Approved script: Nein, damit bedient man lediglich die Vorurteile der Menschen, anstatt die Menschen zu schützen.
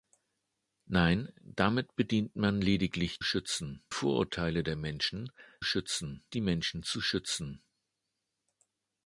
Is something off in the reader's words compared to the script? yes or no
yes